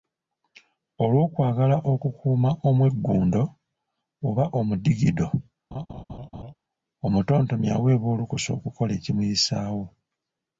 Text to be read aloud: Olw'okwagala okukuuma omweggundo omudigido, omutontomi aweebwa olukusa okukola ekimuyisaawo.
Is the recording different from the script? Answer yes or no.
yes